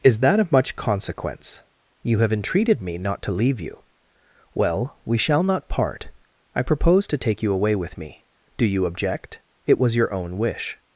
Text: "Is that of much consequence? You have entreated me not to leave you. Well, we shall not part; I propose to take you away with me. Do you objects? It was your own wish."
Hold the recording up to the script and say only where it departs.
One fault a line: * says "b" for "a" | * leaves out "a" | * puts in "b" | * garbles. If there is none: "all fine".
* says "object" for "objects"